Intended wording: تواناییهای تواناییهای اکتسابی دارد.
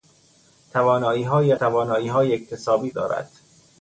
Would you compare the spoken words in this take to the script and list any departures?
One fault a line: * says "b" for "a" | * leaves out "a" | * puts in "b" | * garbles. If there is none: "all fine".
all fine